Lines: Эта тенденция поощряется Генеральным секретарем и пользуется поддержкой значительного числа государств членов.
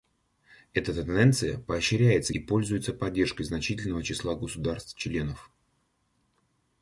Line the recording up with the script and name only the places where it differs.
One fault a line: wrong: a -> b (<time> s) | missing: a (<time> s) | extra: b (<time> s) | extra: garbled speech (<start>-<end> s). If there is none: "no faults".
missing: Генеральным секретарем (2.3 s)